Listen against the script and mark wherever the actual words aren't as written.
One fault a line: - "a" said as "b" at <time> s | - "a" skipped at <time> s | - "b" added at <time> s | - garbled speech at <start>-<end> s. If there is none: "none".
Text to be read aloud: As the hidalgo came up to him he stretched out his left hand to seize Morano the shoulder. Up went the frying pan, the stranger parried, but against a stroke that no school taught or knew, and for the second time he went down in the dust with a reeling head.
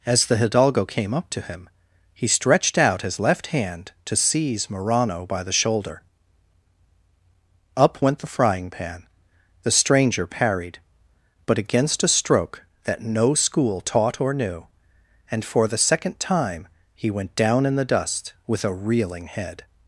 - "by" added at 5.2 s